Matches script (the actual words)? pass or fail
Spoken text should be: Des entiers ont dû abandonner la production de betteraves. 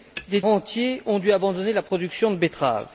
pass